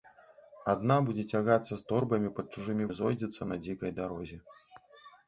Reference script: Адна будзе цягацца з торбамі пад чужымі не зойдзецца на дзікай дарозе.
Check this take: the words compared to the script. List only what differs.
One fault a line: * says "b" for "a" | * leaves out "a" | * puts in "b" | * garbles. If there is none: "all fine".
all fine